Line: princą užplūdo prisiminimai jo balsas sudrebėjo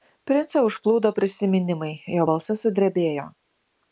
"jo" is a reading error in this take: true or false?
false